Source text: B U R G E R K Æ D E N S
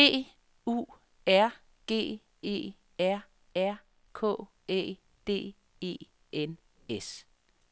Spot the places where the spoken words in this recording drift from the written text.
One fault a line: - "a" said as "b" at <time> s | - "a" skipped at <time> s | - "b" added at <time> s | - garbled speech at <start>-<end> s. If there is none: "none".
- "R" added at 3.6 s